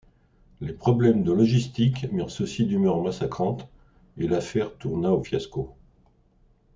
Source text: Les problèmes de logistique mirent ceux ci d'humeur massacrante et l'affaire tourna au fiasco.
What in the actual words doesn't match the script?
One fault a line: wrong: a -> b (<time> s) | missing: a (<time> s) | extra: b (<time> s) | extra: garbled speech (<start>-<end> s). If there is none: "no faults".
no faults